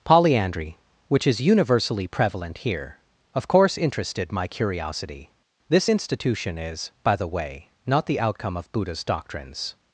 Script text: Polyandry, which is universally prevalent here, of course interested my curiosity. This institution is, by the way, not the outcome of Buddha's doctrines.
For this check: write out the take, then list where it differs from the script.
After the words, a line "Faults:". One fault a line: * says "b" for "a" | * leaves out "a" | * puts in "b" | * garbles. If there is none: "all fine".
Polyandry, which is universally prevalent here, of course interested my curiosity. This institution is, by the way, not the outcome of Buddha's doctrines.
Faults:
all fine